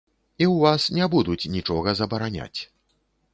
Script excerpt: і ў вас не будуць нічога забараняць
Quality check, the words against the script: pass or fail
pass